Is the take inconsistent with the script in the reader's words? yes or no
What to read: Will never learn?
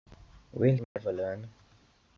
no